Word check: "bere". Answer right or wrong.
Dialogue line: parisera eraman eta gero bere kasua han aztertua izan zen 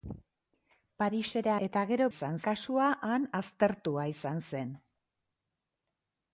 wrong